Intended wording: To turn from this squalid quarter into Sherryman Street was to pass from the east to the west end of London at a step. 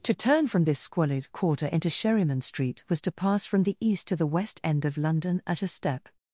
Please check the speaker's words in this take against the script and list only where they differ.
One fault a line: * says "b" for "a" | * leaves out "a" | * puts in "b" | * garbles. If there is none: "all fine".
all fine